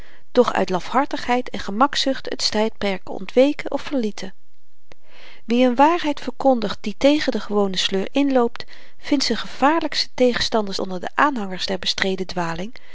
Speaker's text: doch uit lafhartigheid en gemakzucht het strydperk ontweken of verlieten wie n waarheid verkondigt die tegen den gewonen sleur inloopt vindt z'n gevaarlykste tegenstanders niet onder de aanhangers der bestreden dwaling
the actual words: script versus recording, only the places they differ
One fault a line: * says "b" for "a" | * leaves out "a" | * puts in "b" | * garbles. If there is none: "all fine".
* leaves out "niet"